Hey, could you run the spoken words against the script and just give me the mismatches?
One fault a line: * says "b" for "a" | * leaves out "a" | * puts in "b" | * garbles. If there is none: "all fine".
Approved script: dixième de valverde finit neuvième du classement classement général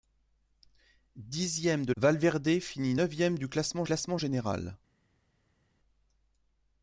all fine